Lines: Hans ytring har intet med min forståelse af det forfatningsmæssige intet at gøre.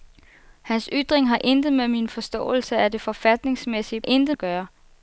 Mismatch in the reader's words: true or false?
false